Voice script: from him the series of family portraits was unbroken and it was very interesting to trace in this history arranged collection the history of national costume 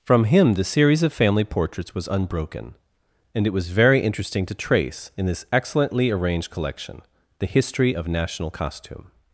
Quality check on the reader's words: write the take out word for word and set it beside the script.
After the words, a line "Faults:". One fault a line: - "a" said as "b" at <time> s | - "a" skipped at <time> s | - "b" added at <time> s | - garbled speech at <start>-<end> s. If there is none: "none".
from him the series of family portraits was unbroken and it was very interesting to trace in this excellently arranged collection the history of national costume
Faults:
- "history" said as "excellently" at 5.5 s